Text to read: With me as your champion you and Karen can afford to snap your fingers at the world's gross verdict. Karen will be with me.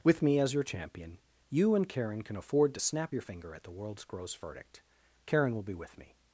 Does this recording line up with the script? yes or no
no